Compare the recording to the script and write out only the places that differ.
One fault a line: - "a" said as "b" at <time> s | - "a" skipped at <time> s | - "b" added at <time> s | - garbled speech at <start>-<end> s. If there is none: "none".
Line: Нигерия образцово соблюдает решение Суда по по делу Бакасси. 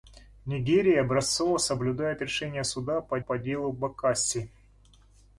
none